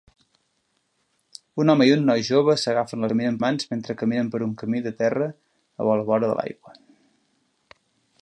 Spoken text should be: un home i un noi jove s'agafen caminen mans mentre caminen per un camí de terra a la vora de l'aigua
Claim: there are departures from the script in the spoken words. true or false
false